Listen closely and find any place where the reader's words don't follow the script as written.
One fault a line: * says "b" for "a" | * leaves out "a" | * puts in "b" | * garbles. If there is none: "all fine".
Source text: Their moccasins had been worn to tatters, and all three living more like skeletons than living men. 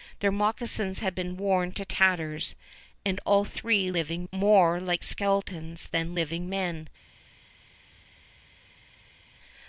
all fine